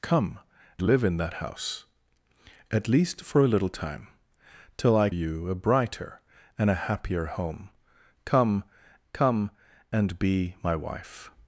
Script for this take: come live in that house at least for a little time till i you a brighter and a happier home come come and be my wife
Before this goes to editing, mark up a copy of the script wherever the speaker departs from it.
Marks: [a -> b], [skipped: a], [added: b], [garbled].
come live in that house at least for a little time till i you a brighter and a happier home come come and be my wife